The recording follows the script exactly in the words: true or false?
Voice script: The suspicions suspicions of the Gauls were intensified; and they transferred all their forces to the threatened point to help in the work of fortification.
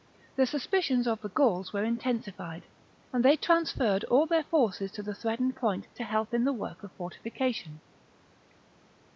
false